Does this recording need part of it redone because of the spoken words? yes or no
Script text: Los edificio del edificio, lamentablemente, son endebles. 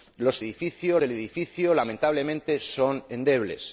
no